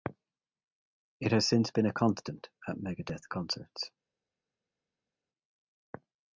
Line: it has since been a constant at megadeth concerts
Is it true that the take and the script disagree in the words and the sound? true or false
false